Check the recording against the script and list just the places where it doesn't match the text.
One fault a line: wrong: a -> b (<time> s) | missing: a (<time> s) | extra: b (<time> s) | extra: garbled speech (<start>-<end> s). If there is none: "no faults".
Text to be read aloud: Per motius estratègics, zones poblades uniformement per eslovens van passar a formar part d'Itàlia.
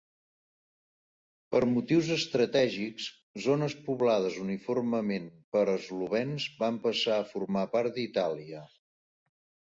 no faults